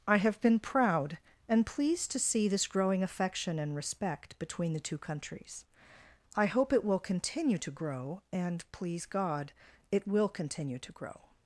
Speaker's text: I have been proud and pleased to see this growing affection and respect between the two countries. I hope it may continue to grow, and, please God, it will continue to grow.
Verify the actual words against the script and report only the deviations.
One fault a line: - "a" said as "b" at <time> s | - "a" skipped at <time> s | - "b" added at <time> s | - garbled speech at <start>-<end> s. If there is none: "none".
- "may" said as "will" at 6.8 s